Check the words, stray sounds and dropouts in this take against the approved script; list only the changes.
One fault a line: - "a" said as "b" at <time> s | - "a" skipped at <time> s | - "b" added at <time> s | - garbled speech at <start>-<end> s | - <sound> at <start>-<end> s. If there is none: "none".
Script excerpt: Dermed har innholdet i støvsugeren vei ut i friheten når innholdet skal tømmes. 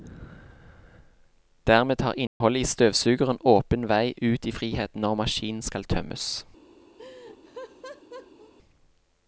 - dropout at 2.3-2.4 s
- "åpen" added at 3.5 s
- "innholdet" said as "maskinen" at 5.1 s
- laugh at 7.0-8.5 s